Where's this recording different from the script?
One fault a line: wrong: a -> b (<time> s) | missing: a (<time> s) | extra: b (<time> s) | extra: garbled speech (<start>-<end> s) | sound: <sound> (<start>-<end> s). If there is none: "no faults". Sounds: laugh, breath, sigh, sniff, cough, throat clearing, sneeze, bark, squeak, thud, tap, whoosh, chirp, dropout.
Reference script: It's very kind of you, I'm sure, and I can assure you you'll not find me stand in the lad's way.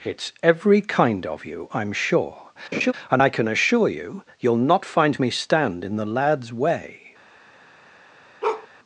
wrong: very -> every (0.4 s)
sound: laugh (2.7-2.9 s)
sound: bark (8.4-8.7 s)